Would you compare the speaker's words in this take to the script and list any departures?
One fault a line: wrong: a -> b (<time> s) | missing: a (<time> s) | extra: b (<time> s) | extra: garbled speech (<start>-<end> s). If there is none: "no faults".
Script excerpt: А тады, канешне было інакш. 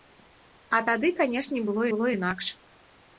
extra: было (1.9 s)